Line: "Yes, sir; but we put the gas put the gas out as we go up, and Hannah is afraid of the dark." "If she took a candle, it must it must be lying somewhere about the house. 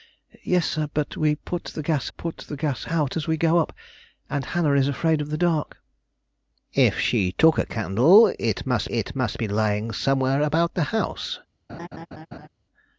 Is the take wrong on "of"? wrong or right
right